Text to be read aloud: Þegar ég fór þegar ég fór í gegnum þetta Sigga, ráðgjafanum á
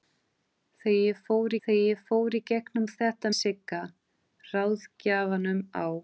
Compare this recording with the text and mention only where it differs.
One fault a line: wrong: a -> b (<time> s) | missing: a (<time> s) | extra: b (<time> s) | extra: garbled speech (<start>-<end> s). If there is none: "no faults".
no faults